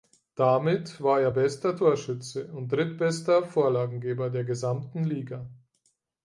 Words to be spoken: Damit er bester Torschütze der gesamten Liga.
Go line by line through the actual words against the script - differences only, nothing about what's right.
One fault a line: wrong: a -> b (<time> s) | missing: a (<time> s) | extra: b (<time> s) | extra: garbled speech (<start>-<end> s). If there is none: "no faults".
extra: war (1.0 s)
extra: und drittbester Vorlagengeber (2.5 s)